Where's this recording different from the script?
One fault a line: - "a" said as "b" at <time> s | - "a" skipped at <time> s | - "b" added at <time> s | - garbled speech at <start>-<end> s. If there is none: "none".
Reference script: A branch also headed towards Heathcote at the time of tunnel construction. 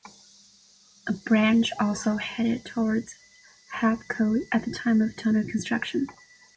none